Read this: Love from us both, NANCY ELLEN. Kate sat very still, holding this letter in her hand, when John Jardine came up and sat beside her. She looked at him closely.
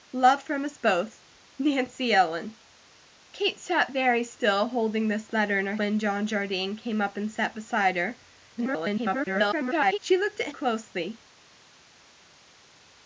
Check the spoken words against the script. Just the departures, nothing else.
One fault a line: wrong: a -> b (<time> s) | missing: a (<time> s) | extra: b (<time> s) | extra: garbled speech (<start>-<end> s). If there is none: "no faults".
missing: hand (5.8 s)
extra: garbled speech (8.6-10.0 s)
missing: him (10.5 s)